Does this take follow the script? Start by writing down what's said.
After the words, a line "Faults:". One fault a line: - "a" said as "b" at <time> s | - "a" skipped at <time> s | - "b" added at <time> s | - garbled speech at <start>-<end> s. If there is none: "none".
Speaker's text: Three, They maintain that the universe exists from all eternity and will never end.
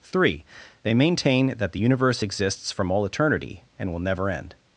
Three, They maintain that the universe exists from all eternity and will never end.
Faults:
none